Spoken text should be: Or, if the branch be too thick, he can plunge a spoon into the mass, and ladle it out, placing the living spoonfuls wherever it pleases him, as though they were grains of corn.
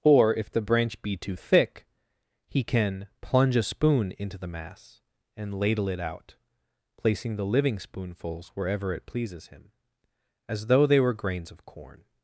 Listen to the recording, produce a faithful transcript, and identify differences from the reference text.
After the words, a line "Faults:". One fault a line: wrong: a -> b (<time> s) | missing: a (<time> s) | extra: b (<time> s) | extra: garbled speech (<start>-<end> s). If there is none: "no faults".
Or, if the branch be too thick, he can plunge a spoon into the mass, and ladle it out, placing the living spoonfuls wherever it pleases him, as though they were grains of corn.
Faults:
no faults